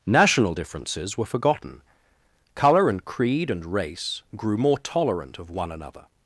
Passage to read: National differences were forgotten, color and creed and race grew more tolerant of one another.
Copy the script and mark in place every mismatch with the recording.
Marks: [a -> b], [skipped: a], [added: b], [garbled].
National differences were forgotten, color and creed and race grew more tolerant of one another.